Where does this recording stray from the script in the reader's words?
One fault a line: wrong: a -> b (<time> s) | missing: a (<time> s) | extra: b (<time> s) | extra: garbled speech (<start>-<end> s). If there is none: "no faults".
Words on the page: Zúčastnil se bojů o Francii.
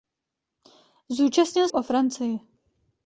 missing: se bojů (1.7 s)